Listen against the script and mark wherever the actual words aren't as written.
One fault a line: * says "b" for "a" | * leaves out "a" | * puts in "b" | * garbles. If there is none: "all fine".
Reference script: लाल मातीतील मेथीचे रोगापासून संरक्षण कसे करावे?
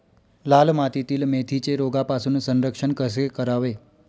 all fine